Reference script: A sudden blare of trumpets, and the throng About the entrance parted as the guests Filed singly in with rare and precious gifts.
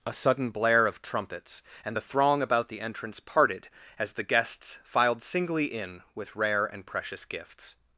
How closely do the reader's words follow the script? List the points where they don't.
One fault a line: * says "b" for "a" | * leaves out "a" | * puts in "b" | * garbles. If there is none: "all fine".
all fine